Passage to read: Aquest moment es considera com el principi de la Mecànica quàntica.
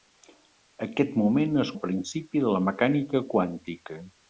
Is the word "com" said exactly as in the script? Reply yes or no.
no